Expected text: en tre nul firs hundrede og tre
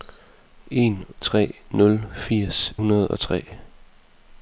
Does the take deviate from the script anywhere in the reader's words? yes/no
no